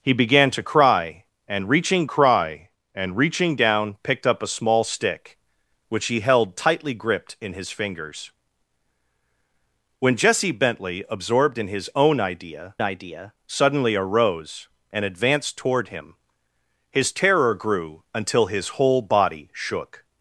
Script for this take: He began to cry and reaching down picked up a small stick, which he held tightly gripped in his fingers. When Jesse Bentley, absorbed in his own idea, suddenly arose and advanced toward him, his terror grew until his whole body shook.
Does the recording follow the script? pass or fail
fail